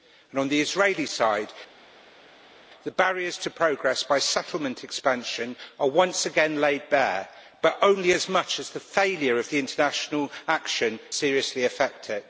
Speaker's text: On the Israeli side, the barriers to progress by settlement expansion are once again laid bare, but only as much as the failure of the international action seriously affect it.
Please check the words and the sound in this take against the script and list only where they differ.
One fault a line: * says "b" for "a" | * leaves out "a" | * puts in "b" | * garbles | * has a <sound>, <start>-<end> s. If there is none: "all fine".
all fine